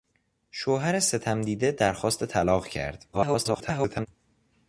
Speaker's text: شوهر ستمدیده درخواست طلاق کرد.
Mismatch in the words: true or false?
true